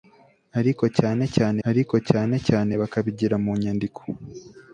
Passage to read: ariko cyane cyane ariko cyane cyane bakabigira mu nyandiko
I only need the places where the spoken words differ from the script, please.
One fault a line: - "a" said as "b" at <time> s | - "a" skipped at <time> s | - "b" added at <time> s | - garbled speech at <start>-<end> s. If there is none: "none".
none